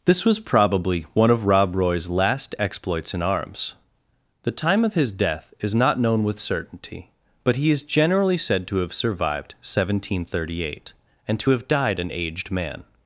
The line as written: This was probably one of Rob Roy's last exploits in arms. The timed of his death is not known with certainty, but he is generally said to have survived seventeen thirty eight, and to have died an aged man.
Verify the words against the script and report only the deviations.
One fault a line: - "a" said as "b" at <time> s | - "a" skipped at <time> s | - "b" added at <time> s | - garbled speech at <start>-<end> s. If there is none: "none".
- "timed" said as "time" at 4.5 s